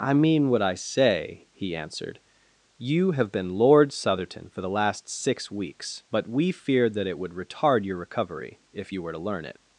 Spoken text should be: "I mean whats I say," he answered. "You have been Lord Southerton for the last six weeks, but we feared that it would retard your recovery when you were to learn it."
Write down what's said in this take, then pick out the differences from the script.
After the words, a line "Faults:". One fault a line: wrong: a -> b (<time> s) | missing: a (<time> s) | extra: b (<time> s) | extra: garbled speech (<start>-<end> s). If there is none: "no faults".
"I mean what I say," he answered. "You have been Lord Southerton for the last six weeks, but we feared that it would retard your recovery if you were to learn it."
Faults:
wrong: whats -> what (0.5 s)
wrong: when -> if (8.7 s)